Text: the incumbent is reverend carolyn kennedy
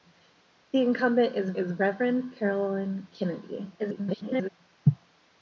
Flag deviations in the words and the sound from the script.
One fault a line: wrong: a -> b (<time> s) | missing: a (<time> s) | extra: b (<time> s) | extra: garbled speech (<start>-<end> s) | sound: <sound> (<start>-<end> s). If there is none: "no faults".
extra: is (1.6 s)
extra: garbled speech (3.8-4.5 s)